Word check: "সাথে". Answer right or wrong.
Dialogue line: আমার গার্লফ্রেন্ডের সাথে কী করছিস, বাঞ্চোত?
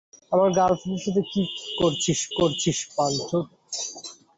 right